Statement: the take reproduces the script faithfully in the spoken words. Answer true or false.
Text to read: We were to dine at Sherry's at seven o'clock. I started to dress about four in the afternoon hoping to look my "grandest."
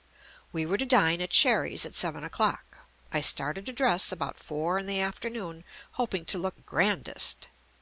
false